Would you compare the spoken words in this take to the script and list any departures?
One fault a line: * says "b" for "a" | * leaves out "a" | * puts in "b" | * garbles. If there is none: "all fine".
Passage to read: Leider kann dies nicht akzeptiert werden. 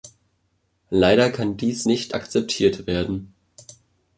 all fine